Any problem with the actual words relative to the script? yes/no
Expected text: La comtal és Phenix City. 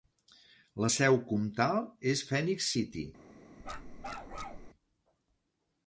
yes